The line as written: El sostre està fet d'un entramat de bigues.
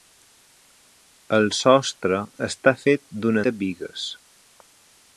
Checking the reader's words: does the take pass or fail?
fail